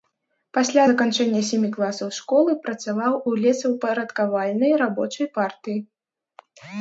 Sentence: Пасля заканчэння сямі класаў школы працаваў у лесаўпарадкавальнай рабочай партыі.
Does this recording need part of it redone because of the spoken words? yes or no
no